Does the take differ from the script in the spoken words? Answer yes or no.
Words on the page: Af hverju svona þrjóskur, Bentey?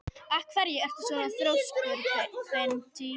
yes